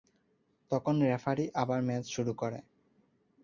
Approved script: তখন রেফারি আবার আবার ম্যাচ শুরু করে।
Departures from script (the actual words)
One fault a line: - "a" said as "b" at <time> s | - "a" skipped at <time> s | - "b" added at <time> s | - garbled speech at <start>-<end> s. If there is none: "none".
- "আবার" skipped at 1.8 s